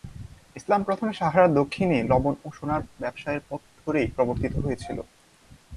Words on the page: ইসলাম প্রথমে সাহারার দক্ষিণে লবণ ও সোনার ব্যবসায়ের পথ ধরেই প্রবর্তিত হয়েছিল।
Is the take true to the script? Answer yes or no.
yes